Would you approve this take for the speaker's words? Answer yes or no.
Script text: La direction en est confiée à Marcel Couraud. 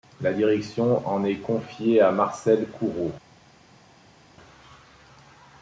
yes